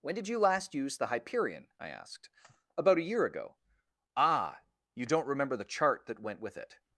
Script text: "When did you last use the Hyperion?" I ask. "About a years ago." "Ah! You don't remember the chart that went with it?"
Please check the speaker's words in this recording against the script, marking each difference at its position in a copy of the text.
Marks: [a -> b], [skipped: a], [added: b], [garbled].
"When did you last use the Hyperion?" I [ask. -> asked] "About a [years -> year] ago." "Ah! You don't remember the chart that went with it?"